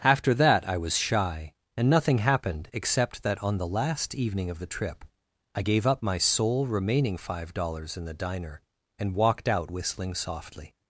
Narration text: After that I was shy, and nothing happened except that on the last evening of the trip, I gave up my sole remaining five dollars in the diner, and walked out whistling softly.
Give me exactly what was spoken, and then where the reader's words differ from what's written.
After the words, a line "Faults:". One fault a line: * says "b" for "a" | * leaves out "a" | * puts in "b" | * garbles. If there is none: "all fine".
After that I was shy, and nothing happened except that on the last evening of the trip, I gave up my sole remaining five dollars in the diner, and walked out whistling softly.
Faults:
all fine